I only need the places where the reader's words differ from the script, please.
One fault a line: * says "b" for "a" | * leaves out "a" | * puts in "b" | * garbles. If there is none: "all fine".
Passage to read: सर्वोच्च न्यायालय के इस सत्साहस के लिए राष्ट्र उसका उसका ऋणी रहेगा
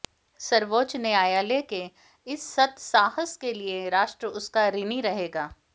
* leaves out "उसका"